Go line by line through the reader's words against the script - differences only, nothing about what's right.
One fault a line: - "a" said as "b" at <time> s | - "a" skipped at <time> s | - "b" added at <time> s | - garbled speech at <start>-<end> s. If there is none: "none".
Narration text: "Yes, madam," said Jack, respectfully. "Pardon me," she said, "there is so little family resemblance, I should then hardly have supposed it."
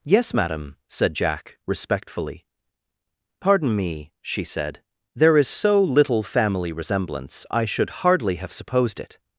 - "then" skipped at 8.0 s